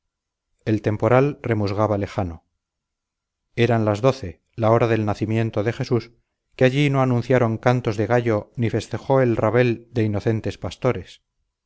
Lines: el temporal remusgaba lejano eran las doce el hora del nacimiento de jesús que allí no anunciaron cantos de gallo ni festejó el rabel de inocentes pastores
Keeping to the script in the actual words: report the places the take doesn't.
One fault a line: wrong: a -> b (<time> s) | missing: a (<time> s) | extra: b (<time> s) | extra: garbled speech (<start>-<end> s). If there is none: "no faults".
wrong: el -> la (4.6 s)